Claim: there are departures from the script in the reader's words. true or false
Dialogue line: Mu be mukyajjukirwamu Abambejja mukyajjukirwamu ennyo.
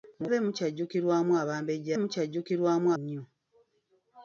false